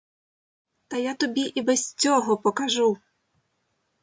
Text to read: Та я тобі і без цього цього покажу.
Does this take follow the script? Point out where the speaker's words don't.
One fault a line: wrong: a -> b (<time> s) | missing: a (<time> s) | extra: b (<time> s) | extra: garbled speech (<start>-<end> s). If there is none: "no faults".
missing: цього (2.4 s)